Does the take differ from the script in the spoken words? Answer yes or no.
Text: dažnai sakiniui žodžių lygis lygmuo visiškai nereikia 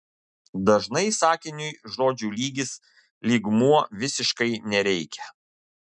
no